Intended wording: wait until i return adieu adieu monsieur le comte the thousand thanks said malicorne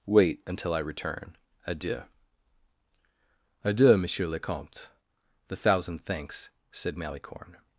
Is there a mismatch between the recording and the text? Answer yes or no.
no